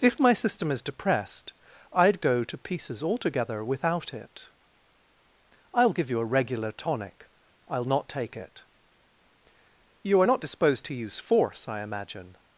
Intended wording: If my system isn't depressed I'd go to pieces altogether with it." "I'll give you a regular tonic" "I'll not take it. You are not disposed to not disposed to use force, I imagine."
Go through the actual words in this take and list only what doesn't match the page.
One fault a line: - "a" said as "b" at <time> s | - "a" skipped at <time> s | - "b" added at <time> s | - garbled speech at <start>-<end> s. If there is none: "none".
- "isn't" said as "is" at 0.7 s
- "with" said as "without" at 3.6 s
- "not disposed to" skipped at 10.9 s